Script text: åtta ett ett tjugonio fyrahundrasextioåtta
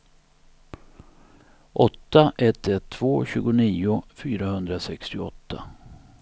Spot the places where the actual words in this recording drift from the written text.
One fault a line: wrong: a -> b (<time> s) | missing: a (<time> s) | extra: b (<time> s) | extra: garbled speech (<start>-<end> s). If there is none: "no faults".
extra: två (2.9 s)